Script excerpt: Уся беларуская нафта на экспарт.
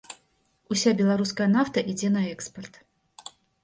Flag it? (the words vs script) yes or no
yes